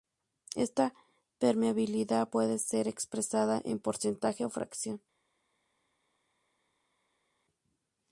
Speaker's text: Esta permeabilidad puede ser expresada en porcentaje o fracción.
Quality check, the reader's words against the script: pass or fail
pass